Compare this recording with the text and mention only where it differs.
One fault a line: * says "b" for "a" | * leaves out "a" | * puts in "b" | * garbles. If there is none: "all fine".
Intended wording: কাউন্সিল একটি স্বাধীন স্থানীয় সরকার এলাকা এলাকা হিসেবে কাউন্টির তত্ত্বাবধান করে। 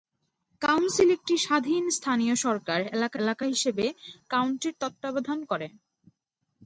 all fine